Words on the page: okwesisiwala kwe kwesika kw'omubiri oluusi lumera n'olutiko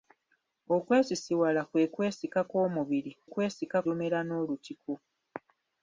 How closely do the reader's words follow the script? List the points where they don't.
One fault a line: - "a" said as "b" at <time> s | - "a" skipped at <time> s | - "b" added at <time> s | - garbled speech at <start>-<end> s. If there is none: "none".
- "oluusi" said as "kwesika" at 3.3 s